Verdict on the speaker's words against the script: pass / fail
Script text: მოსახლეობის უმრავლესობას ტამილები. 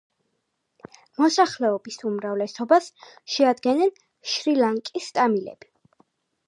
fail